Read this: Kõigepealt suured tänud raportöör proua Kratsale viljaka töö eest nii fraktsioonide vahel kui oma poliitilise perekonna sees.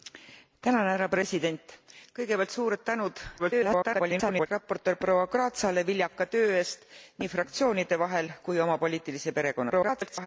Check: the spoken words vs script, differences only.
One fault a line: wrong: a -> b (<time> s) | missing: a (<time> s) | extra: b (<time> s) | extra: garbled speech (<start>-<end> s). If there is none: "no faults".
extra: garbled speech (3.4-4.5 s)
extra: garbled speech (9.7-10.3 s)